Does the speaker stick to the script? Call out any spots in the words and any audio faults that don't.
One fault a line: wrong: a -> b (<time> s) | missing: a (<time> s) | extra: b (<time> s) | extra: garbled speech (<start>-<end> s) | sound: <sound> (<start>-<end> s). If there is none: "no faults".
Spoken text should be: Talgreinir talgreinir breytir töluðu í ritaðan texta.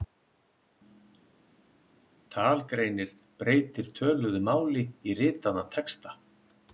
missing: talgreinir (3.1 s)
extra: máli (4.5 s)